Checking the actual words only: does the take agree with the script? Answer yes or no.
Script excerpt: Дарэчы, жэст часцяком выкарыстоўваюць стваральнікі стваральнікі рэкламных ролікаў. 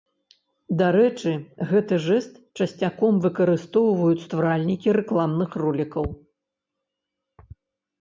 no